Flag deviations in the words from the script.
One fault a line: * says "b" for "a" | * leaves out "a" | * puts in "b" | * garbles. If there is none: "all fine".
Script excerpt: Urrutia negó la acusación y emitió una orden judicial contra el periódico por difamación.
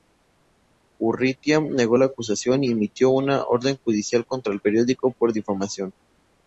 all fine